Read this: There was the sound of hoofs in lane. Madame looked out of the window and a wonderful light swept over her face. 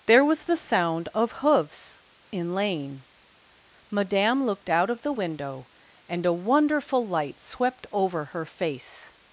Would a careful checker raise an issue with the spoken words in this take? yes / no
no